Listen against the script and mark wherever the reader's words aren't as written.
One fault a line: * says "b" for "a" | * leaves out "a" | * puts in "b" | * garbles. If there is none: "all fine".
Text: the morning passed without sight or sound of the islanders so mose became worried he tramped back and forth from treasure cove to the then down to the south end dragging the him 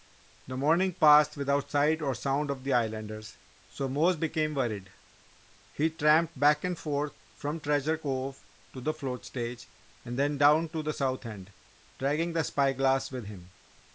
* puts in "float stage and"
* puts in "spy glass with"